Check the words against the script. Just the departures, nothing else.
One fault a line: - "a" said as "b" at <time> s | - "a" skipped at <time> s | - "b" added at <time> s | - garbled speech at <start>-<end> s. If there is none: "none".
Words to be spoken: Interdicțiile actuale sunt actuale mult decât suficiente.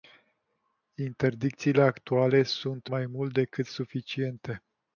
- "actuale" said as "mai" at 2.8 s